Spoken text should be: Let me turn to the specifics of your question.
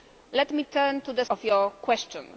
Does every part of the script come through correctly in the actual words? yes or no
no